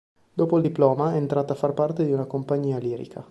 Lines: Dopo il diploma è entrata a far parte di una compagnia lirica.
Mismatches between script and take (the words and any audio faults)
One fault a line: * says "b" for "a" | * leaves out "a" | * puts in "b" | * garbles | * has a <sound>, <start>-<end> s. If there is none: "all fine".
all fine